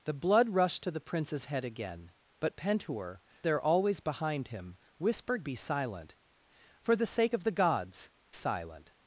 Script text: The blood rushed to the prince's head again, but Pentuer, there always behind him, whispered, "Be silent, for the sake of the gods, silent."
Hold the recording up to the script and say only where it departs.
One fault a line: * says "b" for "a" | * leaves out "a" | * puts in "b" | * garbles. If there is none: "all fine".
all fine